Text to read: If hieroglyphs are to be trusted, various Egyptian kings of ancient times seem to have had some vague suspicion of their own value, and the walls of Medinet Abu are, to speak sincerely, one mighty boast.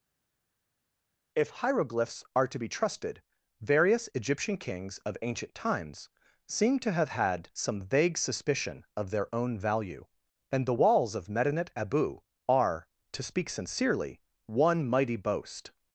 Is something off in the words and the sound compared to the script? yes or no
no